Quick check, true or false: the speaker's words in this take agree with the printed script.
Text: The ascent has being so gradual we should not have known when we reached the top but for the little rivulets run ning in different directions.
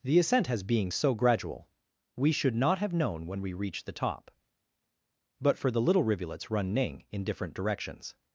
true